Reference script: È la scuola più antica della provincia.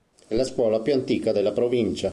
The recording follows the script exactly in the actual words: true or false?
true